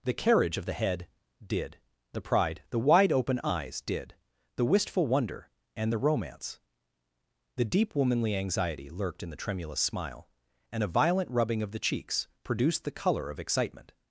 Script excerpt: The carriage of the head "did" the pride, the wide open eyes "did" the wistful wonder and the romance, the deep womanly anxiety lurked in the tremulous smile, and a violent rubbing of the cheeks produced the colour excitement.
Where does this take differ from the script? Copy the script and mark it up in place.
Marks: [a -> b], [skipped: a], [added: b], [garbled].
The carriage of the head "did" the pride, the wide open eyes "did" the wistful wonder and the romance, the deep womanly anxiety lurked in the tremulous smile, and a violent rubbing of the cheeks produced the colour [added: of] excitement.